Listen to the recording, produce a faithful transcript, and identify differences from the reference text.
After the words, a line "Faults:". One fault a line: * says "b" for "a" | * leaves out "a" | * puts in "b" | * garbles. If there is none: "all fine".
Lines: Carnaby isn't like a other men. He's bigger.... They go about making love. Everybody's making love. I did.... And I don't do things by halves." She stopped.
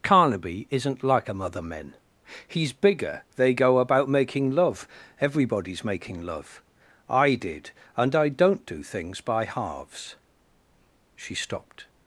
Carnaby isn't like a other men. He's bigger.... They go about making love. Everybody's making love. I did.... And I don't do things by halves." She stopped.
Faults:
all fine